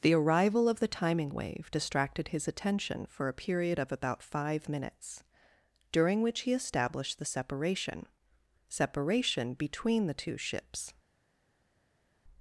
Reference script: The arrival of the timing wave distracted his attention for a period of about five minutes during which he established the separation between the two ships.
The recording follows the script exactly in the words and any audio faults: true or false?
false